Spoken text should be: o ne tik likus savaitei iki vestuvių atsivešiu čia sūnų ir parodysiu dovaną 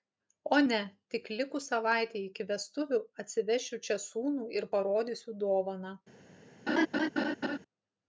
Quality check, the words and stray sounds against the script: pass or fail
fail